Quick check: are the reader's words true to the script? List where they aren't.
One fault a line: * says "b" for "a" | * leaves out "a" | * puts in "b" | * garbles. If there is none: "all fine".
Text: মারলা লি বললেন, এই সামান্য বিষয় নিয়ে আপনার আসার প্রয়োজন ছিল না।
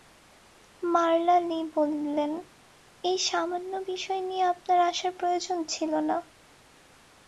all fine